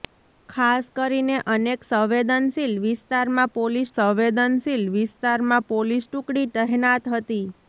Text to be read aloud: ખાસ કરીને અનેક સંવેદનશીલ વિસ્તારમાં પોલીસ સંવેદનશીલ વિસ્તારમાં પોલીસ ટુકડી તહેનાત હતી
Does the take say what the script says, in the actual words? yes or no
yes